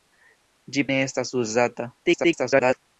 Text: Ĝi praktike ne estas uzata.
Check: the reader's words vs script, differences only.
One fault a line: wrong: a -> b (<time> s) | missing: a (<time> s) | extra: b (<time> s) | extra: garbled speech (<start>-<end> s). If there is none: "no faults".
missing: praktike (0.8 s)
extra: garbled speech (2.0-2.8 s)